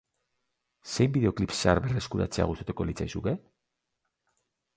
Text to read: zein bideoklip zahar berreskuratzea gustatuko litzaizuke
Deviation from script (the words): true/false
false